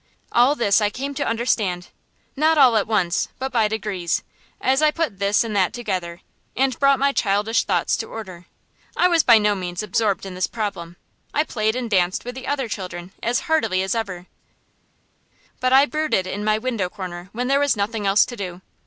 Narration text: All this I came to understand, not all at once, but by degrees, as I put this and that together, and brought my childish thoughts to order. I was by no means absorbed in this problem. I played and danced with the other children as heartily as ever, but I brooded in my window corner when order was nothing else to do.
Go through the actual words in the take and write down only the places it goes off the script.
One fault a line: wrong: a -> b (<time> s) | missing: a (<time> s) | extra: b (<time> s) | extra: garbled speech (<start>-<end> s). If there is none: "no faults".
wrong: order -> there (17.5 s)